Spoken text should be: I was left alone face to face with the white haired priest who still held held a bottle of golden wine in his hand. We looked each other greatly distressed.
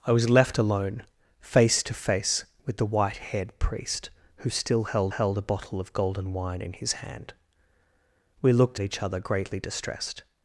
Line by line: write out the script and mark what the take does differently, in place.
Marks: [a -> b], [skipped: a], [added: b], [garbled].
I was left alone face to face with the white haired priest who still held held a bottle of golden wine in his hand. We looked each other greatly distressed.